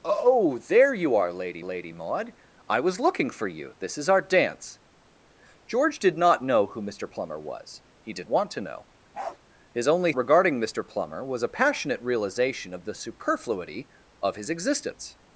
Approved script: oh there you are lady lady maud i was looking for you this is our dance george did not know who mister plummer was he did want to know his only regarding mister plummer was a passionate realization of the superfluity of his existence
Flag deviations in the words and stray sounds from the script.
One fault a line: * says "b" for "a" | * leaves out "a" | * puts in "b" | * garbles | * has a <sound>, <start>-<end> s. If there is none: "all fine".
* has a bark, 9.1-9.4 s